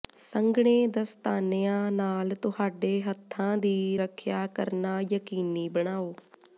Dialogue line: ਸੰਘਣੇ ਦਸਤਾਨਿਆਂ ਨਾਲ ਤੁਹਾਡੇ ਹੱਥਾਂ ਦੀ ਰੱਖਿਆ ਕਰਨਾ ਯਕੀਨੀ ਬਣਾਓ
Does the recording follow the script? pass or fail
pass